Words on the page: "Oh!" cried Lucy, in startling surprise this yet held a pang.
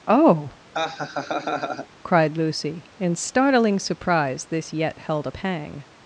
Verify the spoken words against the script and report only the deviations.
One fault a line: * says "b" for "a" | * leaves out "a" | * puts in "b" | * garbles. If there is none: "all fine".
all fine